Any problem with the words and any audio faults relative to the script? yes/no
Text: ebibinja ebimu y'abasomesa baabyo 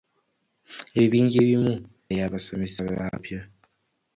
no